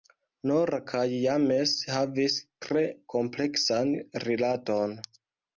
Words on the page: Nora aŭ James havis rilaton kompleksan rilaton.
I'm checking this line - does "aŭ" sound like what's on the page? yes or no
no